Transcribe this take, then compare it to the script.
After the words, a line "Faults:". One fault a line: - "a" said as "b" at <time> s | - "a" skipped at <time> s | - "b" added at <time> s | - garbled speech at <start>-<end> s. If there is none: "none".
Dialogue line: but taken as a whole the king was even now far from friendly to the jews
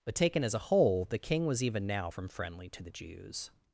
but taken as a whole the king was even now from friendly to the jews
Faults:
- "far" skipped at 2.1 s